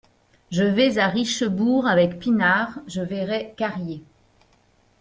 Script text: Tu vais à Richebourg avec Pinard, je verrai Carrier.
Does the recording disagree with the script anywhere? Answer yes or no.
yes